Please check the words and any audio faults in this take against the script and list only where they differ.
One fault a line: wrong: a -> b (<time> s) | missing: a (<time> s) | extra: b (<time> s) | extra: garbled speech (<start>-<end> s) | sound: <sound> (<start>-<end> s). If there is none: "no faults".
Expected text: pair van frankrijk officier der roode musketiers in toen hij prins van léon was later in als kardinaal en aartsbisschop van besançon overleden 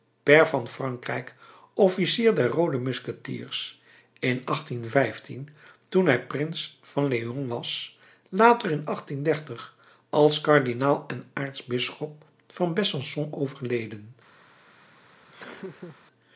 sound: laugh (15.3-16.0 s)